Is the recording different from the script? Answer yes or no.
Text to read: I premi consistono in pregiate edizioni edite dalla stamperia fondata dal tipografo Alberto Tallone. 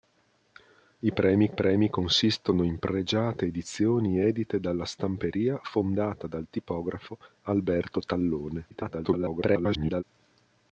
yes